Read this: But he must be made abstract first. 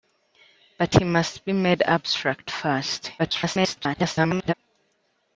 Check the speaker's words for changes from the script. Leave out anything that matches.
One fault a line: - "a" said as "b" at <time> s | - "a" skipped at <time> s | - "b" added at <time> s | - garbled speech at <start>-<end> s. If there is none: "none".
- garbled speech at 3.2-4.5 s